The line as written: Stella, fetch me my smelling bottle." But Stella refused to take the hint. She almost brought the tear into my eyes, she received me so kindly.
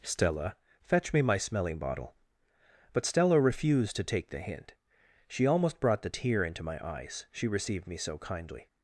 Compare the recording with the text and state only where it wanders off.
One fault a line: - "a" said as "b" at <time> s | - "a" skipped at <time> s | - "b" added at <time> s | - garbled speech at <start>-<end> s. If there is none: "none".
none